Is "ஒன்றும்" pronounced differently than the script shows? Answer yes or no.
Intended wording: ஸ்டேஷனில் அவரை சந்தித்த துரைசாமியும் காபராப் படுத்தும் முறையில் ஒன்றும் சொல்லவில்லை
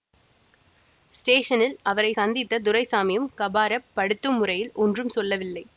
no